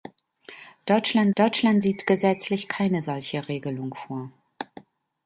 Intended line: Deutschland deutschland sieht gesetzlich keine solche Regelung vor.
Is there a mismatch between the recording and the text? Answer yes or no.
no